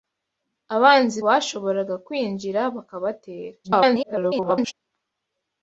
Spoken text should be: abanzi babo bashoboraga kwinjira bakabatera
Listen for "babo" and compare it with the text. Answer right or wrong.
wrong